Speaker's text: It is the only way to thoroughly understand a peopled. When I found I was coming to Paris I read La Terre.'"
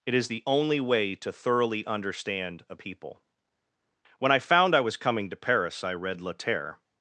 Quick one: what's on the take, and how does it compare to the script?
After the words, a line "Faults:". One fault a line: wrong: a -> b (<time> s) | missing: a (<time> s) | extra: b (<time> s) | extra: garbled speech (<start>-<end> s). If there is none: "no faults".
It is the only way to thoroughly understand a people. When I found I was coming to Paris I read La Terre.'"
Faults:
wrong: peopled -> people (2.7 s)